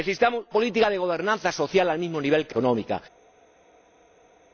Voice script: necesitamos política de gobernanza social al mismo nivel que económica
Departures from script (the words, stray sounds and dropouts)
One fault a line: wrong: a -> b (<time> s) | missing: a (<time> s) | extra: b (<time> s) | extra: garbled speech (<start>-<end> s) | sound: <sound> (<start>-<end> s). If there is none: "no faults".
no faults